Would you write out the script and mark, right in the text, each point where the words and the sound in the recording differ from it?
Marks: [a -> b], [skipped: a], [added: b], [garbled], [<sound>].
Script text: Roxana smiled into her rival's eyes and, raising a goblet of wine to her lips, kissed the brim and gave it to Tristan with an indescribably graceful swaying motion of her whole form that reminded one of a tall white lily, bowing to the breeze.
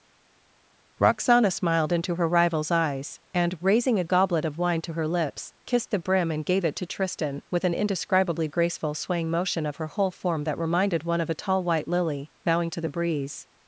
Roxana smiled into her rival's eyes and, raising a goblet of wine to her lips, kissed the brim and gave it to Tristan with an indescribably graceful swaying motion of her whole form that reminded one of a tall white lily, bowing to the breeze.